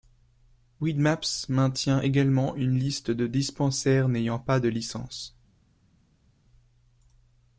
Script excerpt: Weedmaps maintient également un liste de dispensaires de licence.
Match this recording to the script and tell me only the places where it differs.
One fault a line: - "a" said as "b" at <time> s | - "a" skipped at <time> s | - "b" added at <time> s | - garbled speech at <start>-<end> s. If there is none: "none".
- "un" said as "une" at 2.6 s
- "n'ayant pas" added at 4.1 s